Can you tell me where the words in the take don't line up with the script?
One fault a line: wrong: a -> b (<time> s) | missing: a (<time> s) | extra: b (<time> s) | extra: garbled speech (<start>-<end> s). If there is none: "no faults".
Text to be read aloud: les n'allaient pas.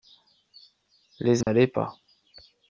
no faults